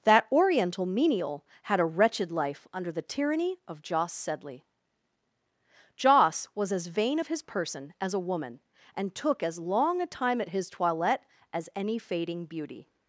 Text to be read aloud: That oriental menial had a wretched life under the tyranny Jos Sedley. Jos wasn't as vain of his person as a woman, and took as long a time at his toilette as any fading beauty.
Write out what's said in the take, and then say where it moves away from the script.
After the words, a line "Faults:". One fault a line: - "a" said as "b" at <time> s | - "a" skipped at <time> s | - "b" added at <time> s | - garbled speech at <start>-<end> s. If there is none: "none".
That oriental menial had a wretched life under the tyranny of Jos Sedley. Jos was as vain of his person as a woman, and took as long a time at his toilette as any fading beauty.
Faults:
- "of" added at 3.7 s
- "wasn't" said as "was" at 6.5 s